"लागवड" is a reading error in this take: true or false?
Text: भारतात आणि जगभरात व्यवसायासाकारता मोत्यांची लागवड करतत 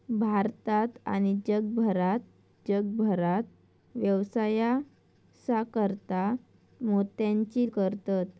true